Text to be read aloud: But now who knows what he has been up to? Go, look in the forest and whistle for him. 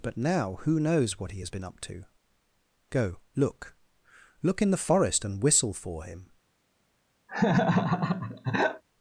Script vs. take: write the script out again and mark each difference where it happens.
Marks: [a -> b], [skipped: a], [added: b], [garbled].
But now who knows what he has been up to? Go, look [added: look] in the forest and whistle for him.